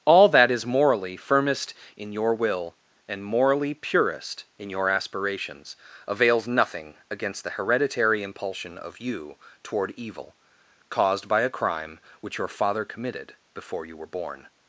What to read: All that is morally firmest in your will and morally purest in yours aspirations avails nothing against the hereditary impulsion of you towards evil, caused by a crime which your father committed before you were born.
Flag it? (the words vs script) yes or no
yes